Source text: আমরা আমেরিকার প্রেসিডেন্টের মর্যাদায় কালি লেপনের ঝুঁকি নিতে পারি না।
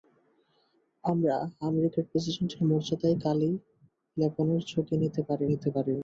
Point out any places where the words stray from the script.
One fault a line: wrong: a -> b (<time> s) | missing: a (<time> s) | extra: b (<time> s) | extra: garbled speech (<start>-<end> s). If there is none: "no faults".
extra: নিতে পারি (5.5 s)